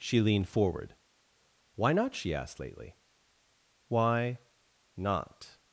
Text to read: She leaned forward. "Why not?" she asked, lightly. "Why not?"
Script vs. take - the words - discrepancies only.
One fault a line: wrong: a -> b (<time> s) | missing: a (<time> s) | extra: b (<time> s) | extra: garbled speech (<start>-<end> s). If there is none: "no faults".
wrong: lightly -> lately (2.6 s)